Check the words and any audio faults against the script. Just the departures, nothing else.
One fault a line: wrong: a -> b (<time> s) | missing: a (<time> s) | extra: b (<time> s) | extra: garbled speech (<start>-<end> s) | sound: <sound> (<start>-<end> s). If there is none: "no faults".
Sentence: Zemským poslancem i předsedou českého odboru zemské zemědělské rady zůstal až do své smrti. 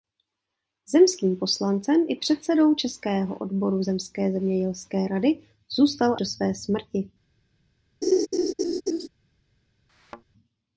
missing: až (6.2 s)
sound: laugh (8.0-9.1 s)
sound: thud (9.9-10.2 s)